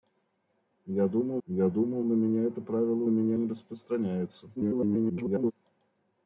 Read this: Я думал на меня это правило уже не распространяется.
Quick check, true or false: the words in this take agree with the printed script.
false